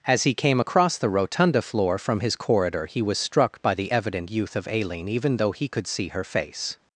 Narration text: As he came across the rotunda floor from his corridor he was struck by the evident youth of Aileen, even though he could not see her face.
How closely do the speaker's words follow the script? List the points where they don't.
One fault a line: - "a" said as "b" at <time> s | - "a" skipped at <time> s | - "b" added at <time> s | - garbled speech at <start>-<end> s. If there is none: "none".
- "not" skipped at 5.9 s